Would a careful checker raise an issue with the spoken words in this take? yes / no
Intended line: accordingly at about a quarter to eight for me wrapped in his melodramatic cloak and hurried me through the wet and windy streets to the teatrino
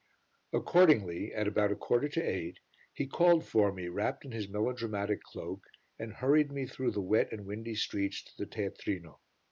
yes